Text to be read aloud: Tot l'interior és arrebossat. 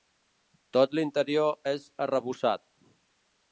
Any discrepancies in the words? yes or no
no